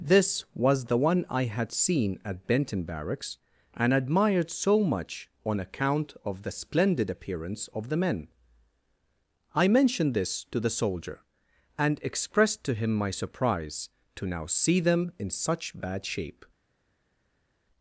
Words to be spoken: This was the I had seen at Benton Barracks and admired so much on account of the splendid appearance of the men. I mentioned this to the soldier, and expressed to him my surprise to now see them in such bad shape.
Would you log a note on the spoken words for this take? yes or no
yes